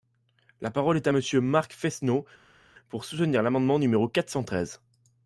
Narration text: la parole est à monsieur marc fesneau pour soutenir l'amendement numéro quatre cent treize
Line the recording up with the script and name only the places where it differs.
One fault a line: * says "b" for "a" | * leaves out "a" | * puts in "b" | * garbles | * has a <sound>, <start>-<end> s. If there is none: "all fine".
all fine